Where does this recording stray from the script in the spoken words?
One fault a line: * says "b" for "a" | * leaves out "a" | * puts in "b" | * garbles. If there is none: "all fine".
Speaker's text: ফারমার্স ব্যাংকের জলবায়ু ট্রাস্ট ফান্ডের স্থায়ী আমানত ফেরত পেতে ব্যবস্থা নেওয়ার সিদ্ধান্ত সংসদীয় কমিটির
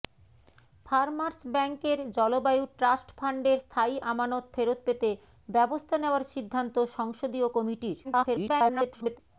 * garbles